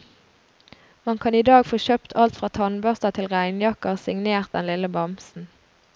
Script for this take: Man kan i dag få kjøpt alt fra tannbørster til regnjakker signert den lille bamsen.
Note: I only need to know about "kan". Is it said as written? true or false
true